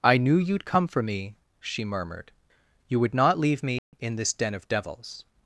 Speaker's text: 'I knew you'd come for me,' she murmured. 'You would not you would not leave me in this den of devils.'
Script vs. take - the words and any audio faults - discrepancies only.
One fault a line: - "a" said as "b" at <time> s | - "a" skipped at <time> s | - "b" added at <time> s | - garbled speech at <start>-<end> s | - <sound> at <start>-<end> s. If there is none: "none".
- "you would not" skipped at 3.4 s
- dropout at 3.8-3.9 s